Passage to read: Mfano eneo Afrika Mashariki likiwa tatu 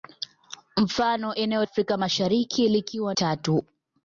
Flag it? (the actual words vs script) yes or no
no